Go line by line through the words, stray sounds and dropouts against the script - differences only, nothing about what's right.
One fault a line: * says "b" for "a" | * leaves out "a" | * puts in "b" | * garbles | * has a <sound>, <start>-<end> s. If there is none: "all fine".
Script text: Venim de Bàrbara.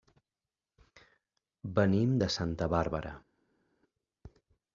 * puts in "Santa"